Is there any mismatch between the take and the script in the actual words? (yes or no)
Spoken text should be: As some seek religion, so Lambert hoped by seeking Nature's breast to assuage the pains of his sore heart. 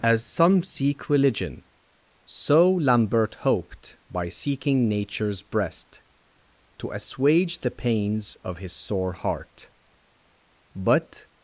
yes